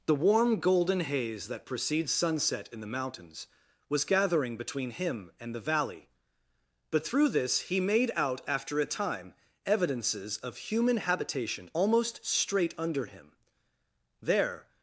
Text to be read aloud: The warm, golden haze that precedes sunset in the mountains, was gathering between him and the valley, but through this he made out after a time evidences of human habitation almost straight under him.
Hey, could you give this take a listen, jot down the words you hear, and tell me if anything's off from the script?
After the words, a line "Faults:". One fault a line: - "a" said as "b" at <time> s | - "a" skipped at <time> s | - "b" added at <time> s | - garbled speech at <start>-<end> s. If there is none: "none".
The warm, golden haze that precedes sunset in the mountains, was gathering between him and the valley, but through this he made out after a time evidences of human habitation almost straight under him. There
Faults:
- "There" added at 14.2 s